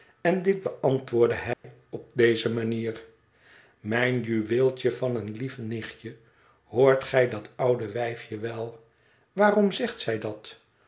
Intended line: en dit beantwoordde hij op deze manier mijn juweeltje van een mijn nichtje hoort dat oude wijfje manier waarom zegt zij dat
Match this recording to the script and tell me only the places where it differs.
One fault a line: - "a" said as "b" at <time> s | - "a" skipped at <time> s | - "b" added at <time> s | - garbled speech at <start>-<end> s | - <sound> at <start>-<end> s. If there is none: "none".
- dropout at 1.5-1.6 s
- "mijn" said as "lief" at 5.3 s
- "gij" added at 7.0 s
- "manier" said as "wel" at 8.4 s